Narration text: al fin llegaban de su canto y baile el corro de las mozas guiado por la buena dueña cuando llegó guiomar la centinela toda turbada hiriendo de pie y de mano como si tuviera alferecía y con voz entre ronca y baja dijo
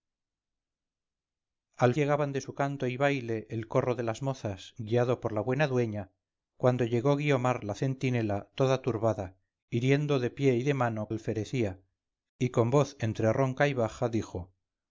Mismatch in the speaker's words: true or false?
true